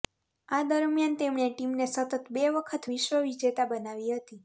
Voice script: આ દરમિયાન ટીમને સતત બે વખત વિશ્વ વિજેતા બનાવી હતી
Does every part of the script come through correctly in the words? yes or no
no